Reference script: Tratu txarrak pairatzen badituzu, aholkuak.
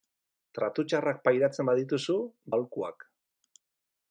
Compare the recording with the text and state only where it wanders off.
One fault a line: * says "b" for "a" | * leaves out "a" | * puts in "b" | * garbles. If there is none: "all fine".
all fine